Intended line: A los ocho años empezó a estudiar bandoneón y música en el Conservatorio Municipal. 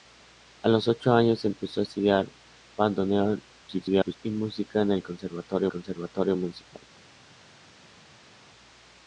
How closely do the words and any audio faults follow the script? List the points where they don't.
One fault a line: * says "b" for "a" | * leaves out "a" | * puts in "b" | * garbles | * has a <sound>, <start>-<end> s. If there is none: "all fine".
* garbles
* puts in "Conservatorio"